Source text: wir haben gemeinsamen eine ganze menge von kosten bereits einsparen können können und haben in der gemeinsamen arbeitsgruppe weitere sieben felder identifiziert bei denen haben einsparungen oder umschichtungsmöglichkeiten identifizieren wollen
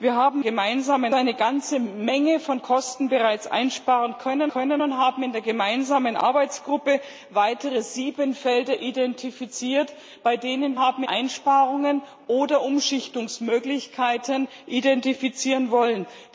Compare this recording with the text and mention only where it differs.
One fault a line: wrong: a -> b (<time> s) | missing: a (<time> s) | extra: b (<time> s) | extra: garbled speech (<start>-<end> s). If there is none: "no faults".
no faults